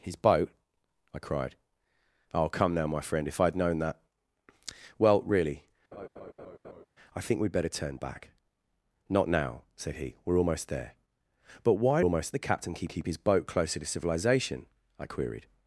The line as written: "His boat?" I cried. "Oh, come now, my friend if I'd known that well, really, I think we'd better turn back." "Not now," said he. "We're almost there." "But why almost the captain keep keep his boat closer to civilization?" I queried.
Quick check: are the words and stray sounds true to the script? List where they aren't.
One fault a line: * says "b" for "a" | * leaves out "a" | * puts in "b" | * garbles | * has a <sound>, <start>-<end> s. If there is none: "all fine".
* has a laugh, 5.9-6.9 s